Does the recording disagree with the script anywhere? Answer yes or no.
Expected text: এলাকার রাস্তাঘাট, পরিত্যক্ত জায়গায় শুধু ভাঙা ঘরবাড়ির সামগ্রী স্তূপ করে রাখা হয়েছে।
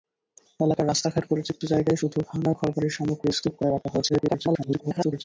yes